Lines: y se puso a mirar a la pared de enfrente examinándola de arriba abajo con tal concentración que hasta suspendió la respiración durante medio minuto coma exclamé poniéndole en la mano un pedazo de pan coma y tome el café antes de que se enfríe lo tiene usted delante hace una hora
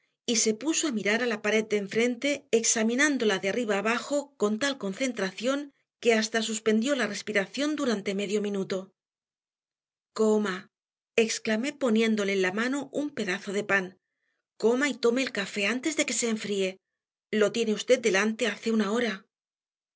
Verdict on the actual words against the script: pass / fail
pass